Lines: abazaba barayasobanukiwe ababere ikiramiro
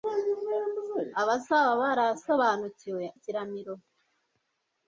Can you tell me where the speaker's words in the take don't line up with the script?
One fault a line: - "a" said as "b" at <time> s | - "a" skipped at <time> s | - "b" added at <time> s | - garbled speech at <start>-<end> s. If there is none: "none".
- "ababere" skipped at 3.0 s